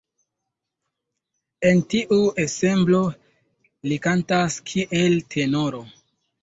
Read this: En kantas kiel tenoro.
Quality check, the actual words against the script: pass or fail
fail